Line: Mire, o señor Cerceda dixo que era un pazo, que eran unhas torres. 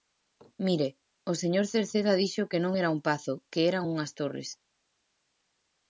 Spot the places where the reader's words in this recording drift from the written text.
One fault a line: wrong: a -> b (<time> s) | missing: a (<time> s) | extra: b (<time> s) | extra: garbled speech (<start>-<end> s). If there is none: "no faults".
extra: non (2.6 s)